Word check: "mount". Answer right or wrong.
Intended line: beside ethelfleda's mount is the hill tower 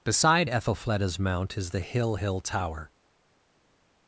right